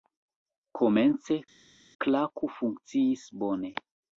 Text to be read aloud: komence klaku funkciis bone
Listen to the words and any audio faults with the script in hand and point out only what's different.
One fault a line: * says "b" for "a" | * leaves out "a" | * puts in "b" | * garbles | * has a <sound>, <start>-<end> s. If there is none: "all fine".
all fine